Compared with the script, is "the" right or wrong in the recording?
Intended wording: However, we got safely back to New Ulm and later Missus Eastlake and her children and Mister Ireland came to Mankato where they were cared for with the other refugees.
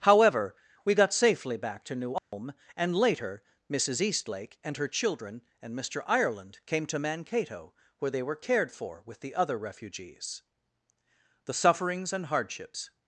right